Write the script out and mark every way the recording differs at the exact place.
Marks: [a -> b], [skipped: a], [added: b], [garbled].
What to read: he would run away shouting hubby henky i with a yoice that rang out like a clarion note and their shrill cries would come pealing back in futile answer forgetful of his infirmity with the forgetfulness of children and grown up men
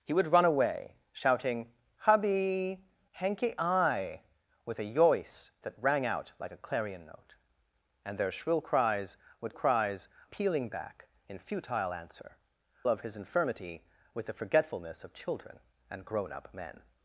he would run away shouting hubby henky i with a yoice that rang out like a clarion note and their shrill cries would [come -> cries] pealing back in futile answer [skipped: forgetful] of his infirmity with the forgetfulness of children and grown up men